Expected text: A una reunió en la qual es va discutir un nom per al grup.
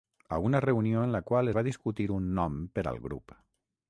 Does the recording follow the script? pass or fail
fail